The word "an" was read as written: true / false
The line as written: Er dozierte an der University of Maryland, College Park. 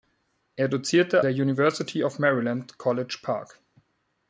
false